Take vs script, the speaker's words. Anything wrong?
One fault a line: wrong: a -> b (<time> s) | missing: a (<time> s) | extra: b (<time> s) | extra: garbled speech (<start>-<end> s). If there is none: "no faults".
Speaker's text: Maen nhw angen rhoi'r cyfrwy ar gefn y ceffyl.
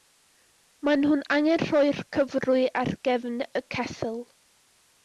no faults